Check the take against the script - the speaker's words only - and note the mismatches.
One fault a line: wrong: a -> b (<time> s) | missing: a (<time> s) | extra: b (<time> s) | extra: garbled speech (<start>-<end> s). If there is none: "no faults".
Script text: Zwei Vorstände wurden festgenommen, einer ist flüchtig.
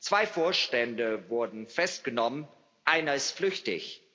no faults